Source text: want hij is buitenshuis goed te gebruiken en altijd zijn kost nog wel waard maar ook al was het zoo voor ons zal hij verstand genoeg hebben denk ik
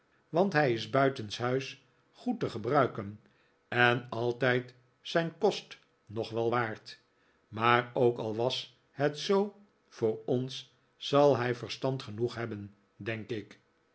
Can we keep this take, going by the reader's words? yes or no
yes